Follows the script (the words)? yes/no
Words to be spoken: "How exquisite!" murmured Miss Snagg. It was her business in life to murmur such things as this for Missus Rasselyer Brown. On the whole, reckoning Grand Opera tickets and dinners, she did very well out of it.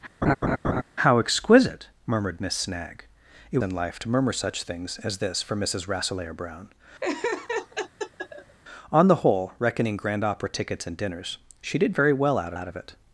no